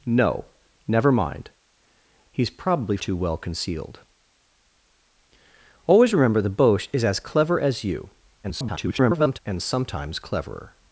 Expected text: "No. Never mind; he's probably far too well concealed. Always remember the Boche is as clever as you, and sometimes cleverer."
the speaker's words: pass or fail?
fail